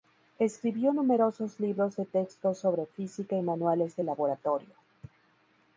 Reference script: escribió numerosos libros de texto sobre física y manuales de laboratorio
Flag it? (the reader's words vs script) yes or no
no